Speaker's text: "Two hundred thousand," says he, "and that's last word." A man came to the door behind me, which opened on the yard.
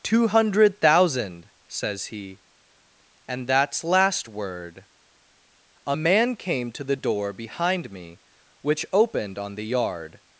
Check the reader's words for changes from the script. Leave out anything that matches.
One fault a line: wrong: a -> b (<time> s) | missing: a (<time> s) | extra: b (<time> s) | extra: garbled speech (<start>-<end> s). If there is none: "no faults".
no faults